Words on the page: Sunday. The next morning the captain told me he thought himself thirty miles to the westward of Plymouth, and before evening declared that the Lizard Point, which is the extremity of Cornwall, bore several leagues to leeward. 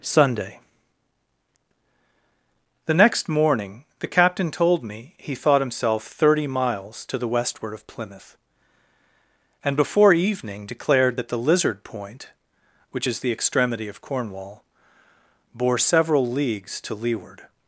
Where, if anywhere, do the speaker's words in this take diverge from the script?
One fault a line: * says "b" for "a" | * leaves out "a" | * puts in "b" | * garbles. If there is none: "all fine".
all fine